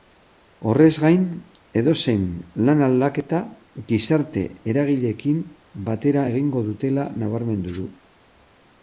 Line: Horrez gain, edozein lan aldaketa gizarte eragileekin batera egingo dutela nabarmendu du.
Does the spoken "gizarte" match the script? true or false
true